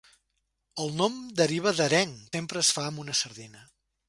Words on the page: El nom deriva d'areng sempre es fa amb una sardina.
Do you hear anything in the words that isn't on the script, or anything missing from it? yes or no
no